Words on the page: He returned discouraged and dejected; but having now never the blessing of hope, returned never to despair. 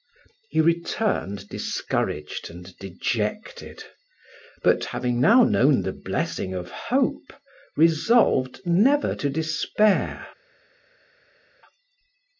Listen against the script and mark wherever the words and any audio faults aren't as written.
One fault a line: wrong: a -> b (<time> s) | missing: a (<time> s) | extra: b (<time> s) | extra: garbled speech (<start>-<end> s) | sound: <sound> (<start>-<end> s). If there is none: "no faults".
wrong: never -> known (5.4 s)
wrong: returned -> resolved (7.8 s)